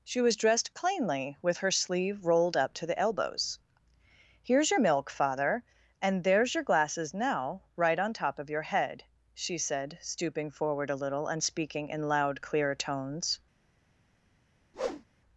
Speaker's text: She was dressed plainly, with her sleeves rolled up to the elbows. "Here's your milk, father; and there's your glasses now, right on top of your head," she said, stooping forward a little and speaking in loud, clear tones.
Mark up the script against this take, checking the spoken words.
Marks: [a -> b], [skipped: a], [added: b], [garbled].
She was dressed plainly, with her [sleeves -> sleeve] rolled up to the elbows. "Here's your milk, father; and there's your glasses now, right on top of your head," she said, stooping forward a little and speaking in loud, clear tones.